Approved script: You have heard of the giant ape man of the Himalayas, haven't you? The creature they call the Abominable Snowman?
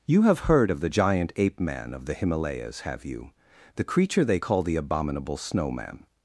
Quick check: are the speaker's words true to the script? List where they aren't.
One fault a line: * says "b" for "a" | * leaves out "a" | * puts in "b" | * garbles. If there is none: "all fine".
* says "have" for "haven't"